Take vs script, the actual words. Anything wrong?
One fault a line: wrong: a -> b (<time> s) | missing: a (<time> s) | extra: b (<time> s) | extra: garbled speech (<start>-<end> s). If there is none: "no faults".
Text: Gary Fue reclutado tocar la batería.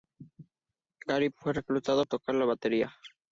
no faults